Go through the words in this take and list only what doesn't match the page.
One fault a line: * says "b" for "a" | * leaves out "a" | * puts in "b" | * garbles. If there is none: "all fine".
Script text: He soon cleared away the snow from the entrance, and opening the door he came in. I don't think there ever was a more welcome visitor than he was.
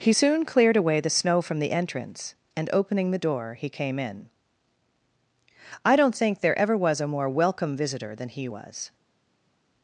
all fine